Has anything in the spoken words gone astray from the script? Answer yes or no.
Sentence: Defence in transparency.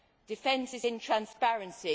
yes